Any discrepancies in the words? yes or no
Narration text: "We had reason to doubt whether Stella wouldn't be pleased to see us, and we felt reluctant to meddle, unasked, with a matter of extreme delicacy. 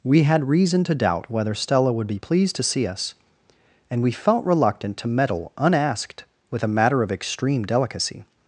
yes